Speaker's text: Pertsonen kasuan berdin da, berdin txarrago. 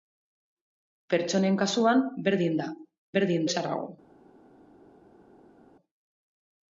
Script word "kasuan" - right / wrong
right